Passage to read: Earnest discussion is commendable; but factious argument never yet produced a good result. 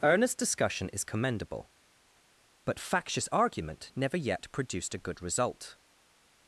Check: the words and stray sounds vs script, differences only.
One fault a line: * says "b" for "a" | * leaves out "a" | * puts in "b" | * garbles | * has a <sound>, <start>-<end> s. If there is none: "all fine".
all fine